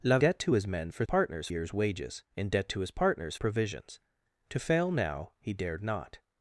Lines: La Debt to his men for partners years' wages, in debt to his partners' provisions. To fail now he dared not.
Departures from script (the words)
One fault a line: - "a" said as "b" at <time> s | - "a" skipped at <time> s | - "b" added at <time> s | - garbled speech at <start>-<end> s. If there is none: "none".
none